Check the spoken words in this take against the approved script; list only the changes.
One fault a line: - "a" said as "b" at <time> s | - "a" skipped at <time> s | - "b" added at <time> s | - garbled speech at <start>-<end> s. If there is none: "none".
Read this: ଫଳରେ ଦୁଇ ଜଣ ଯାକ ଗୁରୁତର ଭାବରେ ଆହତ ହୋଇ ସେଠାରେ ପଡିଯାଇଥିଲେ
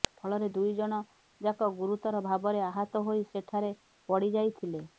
none